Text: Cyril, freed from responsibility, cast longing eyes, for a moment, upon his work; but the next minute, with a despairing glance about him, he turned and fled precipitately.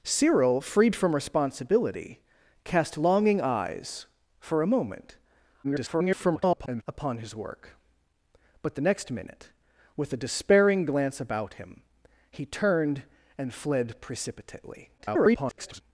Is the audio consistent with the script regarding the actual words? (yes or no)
no